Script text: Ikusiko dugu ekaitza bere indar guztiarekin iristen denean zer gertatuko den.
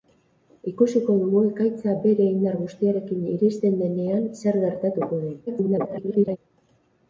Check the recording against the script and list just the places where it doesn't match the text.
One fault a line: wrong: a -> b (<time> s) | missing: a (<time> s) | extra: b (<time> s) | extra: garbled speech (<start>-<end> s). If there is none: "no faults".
extra: garbled speech (5.5-6.4 s)